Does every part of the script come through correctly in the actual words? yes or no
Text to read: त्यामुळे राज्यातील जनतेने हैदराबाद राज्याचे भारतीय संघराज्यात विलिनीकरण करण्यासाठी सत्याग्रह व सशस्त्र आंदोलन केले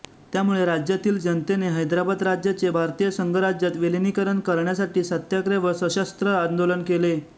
yes